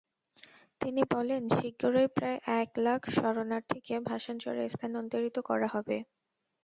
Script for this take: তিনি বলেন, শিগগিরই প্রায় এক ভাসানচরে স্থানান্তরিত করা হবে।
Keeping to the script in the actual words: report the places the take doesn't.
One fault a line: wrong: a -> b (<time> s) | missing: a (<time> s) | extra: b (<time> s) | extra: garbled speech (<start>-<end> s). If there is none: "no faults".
extra: লাখ শরণার্থীকে (2.8 s)